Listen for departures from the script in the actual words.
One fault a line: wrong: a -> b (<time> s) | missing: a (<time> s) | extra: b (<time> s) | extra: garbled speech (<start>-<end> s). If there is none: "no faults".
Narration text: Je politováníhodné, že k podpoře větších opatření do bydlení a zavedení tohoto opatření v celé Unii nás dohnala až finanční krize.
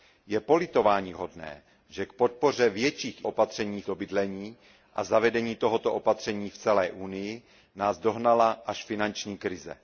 no faults